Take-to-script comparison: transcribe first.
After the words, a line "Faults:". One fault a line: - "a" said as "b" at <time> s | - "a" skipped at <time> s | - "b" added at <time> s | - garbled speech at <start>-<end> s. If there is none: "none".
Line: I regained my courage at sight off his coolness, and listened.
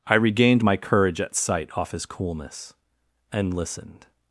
I regained my courage at sight off his coolness, and listened.
Faults:
none